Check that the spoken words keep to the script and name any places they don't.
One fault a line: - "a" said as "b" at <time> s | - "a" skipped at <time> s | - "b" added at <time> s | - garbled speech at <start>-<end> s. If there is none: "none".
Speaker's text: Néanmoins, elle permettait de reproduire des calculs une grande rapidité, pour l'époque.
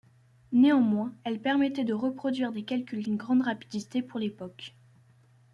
none